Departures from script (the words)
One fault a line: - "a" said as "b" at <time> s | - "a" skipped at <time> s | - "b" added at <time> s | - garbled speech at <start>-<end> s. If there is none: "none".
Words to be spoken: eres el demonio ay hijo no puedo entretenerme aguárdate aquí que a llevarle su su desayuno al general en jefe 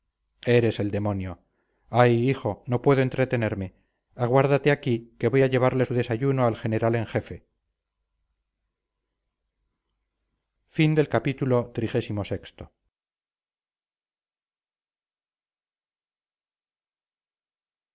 - "voy" added at 5.3 s
- "su" skipped at 5.9 s